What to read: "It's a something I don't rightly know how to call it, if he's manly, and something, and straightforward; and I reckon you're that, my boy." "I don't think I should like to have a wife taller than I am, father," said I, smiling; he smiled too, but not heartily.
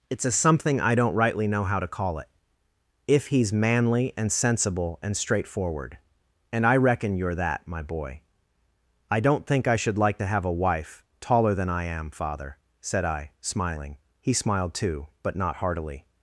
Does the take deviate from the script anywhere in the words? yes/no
yes